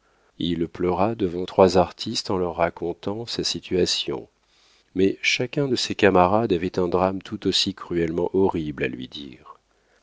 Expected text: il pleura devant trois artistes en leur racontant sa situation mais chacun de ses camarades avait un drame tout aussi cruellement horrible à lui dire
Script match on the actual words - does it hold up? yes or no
yes